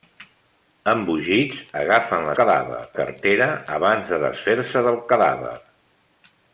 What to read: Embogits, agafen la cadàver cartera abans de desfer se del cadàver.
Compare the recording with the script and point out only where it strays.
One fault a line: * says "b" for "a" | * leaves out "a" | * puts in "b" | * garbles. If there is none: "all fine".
all fine